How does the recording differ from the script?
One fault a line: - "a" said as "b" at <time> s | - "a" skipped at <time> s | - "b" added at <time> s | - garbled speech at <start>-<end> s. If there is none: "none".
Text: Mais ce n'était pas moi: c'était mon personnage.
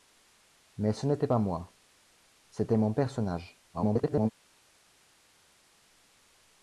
- garbled speech at 3.7-4.3 s